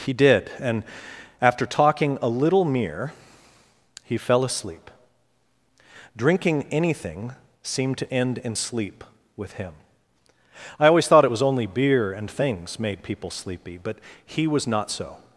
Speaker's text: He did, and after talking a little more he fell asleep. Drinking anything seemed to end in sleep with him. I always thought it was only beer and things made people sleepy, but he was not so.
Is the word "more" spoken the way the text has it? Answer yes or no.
no